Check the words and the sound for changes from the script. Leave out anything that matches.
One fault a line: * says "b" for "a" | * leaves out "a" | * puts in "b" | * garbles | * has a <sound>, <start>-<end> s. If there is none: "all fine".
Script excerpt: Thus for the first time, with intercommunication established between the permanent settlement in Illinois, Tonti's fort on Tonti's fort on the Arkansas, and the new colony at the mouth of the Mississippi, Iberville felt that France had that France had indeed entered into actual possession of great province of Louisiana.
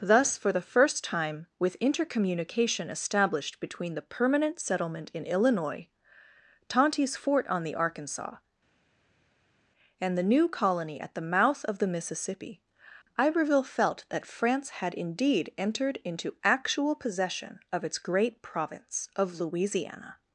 * leaves out "Tonti's fort on"
* leaves out "that France had"
* puts in "its"